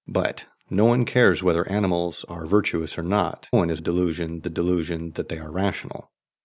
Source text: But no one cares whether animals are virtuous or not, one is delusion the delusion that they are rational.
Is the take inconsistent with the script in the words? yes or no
no